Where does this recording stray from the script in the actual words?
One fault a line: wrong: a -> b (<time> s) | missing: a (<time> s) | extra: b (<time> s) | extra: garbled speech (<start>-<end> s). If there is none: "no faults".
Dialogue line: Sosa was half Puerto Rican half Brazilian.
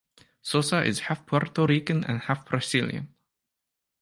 wrong: was -> is (0.8 s)
extra: and (2.0 s)